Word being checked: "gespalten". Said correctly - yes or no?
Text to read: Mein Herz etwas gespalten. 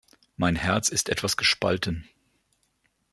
yes